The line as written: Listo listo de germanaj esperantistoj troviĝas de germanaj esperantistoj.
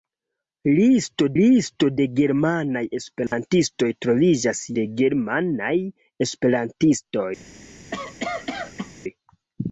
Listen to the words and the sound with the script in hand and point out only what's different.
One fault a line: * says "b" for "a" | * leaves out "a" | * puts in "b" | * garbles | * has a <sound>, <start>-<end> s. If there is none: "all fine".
* has a dropout, 3.3-3.3 s
* has a cough, 7.9-8.9 s